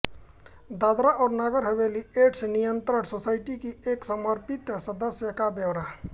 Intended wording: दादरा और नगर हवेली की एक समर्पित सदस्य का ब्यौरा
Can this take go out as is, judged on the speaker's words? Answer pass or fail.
fail